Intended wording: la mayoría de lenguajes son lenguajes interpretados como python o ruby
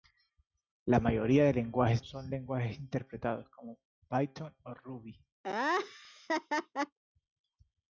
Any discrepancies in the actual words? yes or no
no